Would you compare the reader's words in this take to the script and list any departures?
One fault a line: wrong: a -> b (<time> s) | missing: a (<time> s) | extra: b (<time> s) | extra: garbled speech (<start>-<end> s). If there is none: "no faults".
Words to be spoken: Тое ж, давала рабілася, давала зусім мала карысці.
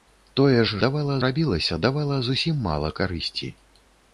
no faults